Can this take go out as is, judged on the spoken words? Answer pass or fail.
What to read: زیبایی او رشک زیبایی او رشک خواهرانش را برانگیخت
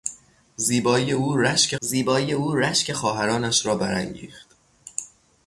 pass